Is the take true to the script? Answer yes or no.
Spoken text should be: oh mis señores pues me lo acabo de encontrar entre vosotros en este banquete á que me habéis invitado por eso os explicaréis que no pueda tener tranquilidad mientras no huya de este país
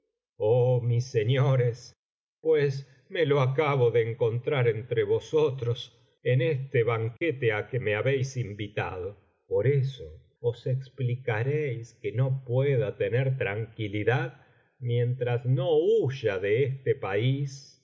yes